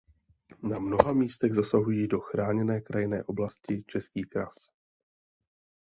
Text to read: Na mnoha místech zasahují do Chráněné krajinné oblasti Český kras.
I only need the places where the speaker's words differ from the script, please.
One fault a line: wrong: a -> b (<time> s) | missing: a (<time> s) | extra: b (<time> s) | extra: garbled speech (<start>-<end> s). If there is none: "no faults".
no faults